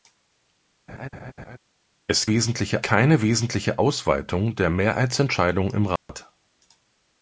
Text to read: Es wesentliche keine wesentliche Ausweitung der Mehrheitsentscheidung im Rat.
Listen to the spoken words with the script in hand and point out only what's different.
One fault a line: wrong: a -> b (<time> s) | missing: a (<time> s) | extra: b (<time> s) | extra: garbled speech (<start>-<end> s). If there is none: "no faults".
no faults